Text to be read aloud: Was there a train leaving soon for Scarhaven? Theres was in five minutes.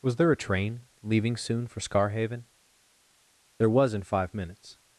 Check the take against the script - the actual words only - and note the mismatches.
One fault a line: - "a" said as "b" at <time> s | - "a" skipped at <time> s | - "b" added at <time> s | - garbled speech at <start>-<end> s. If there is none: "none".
- "Theres" said as "There" at 3.6 s